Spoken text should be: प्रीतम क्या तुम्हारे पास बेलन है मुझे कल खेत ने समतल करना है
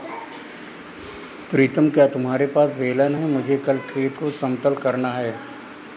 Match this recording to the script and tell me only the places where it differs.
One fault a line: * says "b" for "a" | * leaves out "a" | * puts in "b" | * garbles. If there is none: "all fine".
* says "को" for "ने"